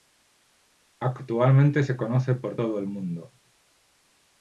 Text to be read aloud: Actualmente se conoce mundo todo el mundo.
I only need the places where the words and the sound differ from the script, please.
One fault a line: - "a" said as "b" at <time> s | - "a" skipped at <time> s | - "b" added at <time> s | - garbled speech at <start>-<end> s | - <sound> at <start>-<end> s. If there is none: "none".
- "mundo" said as "por" at 2.3 s